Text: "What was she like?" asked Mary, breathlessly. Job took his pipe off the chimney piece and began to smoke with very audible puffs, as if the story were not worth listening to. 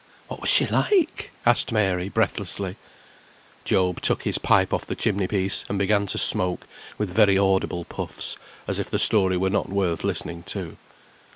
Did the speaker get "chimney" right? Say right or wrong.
right